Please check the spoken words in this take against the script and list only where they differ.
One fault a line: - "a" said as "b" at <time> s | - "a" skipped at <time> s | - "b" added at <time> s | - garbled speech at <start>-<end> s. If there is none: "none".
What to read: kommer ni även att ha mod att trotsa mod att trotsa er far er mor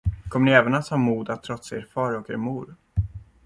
- "mod att trotsa" skipped at 1.8 s
- "och" added at 2.1 s